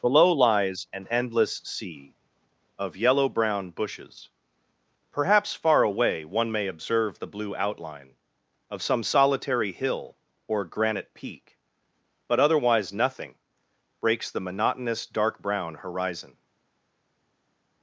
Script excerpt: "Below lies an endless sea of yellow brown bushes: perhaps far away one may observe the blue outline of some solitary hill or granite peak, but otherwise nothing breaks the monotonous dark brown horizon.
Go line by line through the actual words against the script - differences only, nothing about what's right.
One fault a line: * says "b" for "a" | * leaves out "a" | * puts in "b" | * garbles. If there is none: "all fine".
all fine